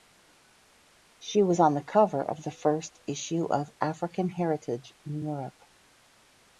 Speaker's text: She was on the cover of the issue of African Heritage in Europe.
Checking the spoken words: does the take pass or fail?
fail